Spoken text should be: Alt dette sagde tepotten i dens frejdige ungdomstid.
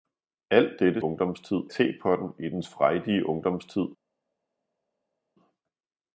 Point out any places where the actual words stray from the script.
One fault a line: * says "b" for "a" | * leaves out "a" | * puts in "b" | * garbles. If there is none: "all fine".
* says "ungdomstid" for "sagde"